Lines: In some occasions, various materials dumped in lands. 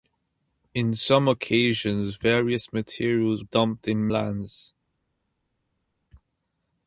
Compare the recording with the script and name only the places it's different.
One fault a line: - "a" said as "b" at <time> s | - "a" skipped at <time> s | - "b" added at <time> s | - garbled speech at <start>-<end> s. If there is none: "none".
none